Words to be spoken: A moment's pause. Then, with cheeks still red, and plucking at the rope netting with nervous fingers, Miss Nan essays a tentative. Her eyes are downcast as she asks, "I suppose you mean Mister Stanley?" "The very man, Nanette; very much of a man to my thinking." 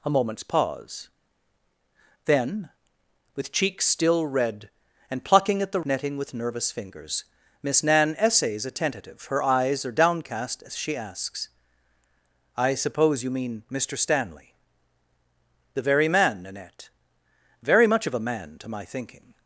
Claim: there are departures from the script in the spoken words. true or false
true